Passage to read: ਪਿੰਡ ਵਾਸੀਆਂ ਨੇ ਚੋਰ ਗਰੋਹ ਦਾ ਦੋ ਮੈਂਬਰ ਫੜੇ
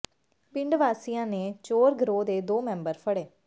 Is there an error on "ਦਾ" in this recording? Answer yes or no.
yes